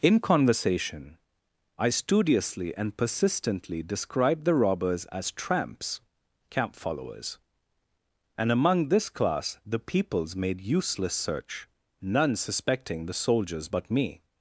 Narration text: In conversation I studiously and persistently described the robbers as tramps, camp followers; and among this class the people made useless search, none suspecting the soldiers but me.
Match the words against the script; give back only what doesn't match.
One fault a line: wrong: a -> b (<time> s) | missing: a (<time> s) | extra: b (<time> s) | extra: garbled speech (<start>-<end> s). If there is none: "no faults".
wrong: people -> peoples (9.8 s)